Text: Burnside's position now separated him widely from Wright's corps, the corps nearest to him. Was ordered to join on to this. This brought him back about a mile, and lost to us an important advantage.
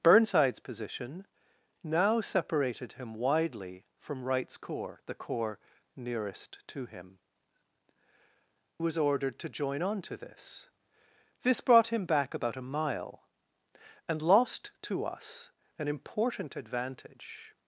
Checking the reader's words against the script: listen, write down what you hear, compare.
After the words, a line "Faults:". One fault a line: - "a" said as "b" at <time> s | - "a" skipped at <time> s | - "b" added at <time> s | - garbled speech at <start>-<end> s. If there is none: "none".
Burnside's position now separated him widely from Wright's corps, the corps nearest to him. Was ordered to join on to this. This brought him back about a mile, and lost to us an important advantage.
Faults:
none